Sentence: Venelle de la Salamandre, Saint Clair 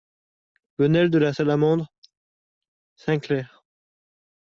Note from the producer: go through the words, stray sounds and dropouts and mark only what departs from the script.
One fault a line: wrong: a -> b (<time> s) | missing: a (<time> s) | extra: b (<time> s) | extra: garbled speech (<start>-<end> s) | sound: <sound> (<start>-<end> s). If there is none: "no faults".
no faults